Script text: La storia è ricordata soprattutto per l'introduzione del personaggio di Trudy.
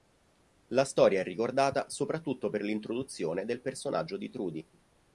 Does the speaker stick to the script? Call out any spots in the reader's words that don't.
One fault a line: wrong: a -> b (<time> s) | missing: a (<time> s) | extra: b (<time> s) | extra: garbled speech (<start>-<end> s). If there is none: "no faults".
no faults